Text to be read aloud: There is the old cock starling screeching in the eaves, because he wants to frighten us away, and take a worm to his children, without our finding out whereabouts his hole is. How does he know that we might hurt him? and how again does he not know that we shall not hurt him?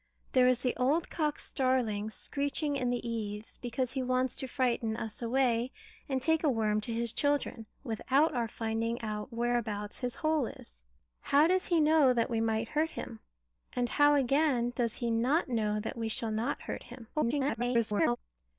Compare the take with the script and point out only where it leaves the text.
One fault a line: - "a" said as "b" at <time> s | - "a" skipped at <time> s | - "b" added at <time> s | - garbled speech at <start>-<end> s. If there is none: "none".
- garbled speech at 17.1-18.2 s